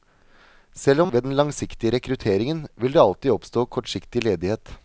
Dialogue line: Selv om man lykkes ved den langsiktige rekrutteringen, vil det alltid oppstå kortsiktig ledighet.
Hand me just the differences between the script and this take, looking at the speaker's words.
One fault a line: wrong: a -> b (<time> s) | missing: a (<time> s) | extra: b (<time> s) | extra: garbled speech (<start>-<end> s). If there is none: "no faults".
missing: man lykkes (1.1 s)